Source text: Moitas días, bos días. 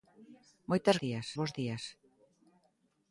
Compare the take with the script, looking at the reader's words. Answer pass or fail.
pass